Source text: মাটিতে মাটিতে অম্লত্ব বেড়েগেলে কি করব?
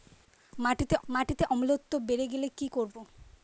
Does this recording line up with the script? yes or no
yes